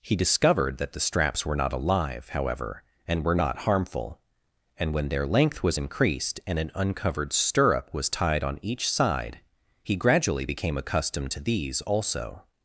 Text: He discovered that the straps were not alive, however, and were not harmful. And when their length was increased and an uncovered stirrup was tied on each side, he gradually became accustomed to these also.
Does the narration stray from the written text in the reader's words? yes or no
no